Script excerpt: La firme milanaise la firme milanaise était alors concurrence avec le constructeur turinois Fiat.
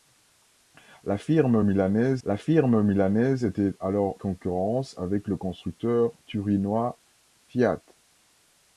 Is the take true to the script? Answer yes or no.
yes